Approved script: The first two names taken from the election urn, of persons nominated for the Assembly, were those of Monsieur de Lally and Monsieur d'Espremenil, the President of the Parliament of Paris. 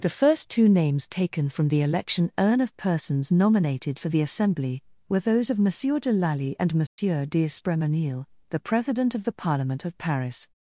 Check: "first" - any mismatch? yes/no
no